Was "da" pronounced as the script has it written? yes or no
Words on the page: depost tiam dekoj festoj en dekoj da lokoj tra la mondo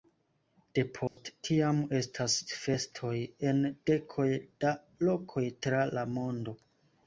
yes